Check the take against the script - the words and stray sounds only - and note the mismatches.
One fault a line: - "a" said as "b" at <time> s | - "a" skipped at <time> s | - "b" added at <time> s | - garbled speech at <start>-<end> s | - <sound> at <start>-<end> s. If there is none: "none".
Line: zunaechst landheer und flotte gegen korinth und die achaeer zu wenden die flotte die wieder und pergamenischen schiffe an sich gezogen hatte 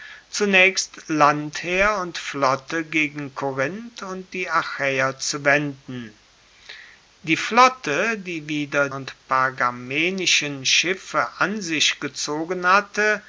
none